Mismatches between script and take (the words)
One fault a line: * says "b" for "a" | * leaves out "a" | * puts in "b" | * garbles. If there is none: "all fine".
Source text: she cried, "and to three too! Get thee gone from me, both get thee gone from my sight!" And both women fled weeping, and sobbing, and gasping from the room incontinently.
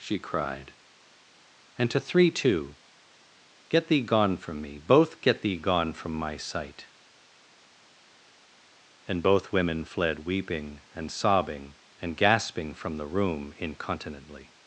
all fine